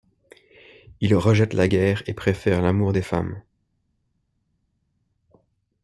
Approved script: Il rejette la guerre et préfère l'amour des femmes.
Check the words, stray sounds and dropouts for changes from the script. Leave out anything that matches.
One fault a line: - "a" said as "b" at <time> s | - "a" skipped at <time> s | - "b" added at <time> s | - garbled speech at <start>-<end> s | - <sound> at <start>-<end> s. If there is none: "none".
none